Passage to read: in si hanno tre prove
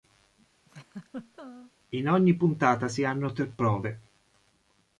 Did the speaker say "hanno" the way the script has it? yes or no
yes